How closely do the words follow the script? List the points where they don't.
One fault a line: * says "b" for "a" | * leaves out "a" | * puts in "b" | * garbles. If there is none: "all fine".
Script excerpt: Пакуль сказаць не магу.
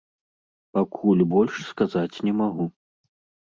* puts in "больш"